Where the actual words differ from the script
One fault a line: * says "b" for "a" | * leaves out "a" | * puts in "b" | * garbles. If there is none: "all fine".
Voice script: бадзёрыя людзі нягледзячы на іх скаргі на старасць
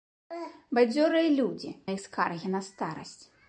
* leaves out "нягледзячы"